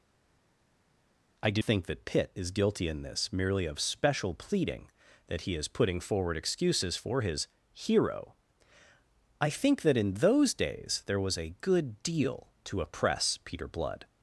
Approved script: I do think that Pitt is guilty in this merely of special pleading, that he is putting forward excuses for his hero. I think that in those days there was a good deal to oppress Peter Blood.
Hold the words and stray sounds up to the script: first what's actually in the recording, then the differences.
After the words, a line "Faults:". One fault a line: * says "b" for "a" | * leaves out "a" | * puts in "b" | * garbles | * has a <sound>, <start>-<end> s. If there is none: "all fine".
I do think that Pitt is guilty in this merely of special pleading, that he is putting forward excuses for his hero. I think that in those days there was a good deal to oppress Peter Blood.
Faults:
all fine